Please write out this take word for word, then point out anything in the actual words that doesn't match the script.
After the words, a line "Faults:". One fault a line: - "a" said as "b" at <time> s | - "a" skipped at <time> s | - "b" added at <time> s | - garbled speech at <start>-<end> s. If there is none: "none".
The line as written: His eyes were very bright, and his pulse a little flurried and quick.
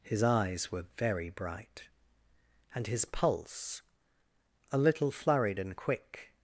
His eyes were very bright, and his pulse a little flurried and quick.
Faults:
none